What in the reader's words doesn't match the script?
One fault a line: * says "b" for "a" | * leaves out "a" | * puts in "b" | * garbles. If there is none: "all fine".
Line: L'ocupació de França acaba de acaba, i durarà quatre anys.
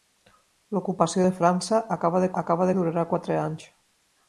all fine